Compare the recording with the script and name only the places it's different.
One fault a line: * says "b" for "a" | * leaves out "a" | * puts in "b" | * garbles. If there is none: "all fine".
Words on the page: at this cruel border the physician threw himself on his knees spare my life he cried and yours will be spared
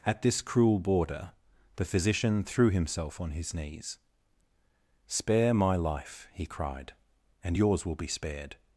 all fine